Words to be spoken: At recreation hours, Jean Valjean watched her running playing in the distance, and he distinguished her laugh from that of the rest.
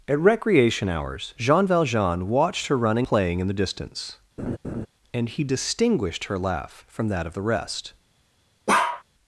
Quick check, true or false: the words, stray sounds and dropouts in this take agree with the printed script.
false